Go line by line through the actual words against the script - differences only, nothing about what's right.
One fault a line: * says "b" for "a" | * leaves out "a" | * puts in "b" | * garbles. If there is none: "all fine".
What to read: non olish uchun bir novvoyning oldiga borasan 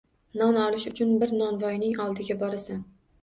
all fine